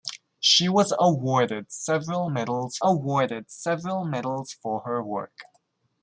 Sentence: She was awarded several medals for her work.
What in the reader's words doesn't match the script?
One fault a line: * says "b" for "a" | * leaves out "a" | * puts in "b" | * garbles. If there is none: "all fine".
* puts in "awarded several medals"